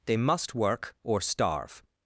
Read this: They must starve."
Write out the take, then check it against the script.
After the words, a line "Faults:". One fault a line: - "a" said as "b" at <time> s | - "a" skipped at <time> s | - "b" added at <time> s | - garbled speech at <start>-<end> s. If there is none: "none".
They must work or starve."
Faults:
- "work or" added at 0.6 s